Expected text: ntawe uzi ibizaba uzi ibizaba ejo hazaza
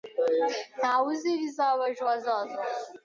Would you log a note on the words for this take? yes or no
yes